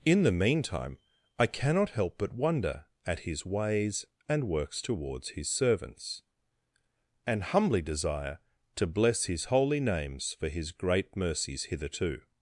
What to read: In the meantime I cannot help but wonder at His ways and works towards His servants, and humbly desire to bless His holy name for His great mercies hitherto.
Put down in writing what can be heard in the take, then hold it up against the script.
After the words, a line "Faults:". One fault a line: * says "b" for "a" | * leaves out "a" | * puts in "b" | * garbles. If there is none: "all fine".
In the meantime I cannot help but wonder at His ways and works towards His servants, and humbly desire to bless His holy names for His great mercies hitherto.
Faults:
* says "names" for "name"